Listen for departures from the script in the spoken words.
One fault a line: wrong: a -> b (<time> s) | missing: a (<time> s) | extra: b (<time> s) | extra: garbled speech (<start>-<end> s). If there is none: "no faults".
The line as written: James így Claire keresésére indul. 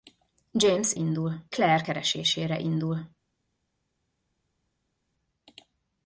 wrong: így -> indul (0.9 s)